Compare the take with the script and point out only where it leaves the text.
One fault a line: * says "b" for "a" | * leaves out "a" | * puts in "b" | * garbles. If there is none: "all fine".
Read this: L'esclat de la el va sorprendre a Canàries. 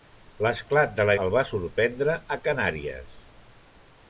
all fine